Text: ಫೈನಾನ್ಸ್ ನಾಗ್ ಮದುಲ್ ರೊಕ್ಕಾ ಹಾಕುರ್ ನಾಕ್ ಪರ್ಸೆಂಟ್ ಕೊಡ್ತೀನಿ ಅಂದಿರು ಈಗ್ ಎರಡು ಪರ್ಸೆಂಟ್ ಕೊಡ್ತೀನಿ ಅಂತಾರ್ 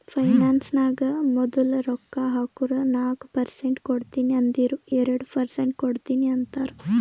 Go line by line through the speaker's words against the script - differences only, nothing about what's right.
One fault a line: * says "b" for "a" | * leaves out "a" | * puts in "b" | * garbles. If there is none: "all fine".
* leaves out "ಈಗ್"